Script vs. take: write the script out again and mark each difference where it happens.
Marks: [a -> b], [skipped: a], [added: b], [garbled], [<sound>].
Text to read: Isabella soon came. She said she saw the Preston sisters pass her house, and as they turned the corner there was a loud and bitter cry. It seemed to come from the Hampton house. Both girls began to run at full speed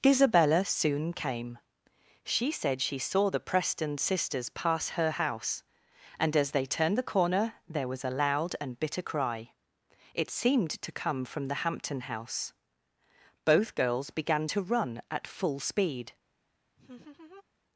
Isabella soon came. She said she saw the Preston sisters pass her house, and as they turned the corner there was a loud and bitter cry. It seemed to come from the Hampton house. Both girls began to run at full speed [laugh]